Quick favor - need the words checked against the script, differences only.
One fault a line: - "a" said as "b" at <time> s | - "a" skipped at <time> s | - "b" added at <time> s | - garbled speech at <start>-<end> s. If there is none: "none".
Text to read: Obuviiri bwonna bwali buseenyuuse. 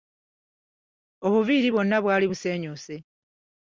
none